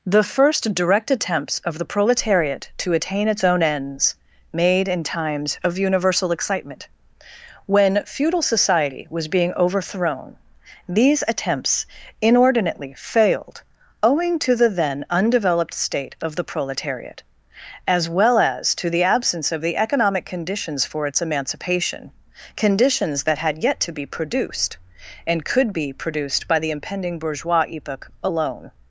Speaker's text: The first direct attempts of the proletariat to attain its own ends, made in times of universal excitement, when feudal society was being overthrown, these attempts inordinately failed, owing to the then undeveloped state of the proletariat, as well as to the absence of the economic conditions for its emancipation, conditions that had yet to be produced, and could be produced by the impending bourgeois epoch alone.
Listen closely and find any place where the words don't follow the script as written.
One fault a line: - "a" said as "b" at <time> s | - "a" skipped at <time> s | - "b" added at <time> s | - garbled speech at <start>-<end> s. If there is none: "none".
none